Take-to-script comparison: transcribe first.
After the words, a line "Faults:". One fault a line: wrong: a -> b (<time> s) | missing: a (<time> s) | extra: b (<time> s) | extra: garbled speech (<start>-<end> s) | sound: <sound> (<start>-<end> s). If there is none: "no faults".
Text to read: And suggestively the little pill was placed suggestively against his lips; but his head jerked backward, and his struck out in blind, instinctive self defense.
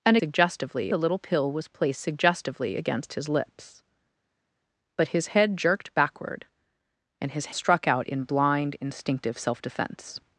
And suggestively the little pill was placed suggestively against his lips; but his head jerked backward, and his struck out in blind, instinctive self defense.
Faults:
no faults